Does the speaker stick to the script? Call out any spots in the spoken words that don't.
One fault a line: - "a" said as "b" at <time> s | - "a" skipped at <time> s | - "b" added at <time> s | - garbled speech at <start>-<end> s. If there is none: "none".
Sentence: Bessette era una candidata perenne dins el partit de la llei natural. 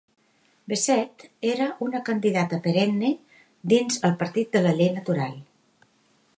none